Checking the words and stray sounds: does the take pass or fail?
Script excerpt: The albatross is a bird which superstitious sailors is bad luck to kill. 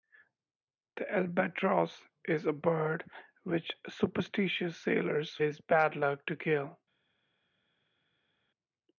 pass